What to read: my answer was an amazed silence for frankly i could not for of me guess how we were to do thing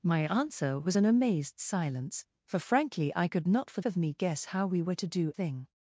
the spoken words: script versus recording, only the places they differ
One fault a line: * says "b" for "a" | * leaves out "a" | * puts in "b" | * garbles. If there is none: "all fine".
all fine